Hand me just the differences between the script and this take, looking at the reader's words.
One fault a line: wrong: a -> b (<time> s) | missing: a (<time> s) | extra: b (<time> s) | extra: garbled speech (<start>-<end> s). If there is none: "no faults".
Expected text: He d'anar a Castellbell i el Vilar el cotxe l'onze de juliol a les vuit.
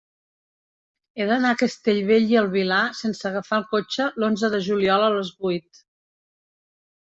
extra: sense agafar (3.0 s)